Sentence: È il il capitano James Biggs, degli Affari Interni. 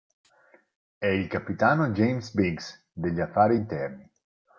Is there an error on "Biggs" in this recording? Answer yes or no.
no